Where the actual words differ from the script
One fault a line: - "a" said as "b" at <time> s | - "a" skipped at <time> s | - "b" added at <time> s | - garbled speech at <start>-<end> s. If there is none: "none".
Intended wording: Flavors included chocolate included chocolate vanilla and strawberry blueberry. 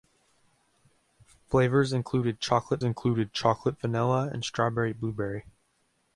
none